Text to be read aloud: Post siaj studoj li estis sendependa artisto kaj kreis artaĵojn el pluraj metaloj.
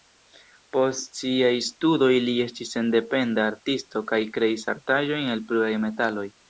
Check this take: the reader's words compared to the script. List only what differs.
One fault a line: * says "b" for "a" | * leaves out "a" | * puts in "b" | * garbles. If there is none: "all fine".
all fine